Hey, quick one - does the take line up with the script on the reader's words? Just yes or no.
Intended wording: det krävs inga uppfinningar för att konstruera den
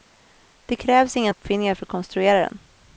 yes